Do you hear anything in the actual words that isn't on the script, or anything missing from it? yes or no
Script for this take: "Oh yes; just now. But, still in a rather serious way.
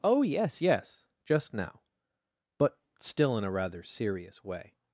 yes